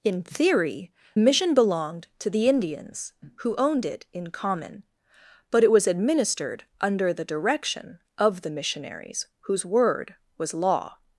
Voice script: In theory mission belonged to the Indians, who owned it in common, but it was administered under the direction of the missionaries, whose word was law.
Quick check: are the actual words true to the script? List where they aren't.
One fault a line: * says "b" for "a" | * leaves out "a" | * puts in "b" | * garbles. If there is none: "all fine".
all fine